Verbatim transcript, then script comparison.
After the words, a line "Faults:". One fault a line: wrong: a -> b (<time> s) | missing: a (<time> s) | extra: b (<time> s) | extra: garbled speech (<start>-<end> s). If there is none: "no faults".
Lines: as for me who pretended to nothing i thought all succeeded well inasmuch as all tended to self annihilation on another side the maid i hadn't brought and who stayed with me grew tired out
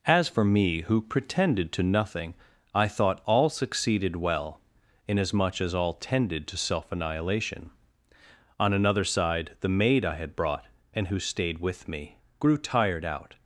as for me who pretended to nothing i thought all succeeded well inasmuch as all tended to self annihilation on another side the maid i had brought and who stayed with me grew tired out
Faults:
wrong: hadn't -> had (10.2 s)